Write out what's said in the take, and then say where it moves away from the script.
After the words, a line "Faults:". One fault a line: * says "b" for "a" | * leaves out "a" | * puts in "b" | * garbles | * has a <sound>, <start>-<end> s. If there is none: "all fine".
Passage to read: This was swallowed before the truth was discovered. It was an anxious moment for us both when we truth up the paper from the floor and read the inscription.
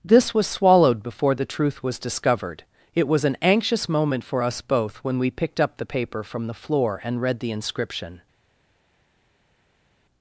This was swallowed before the truth was discovered. It was an anxious moment for us both when we picked up the paper from the floor and read the inscription.
Faults:
* says "picked" for "truth"